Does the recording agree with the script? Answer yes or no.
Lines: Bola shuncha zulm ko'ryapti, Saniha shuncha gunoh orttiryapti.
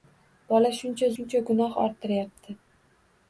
no